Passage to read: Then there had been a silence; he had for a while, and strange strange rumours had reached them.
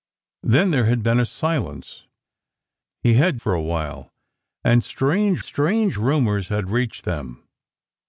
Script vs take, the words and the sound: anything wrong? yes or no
no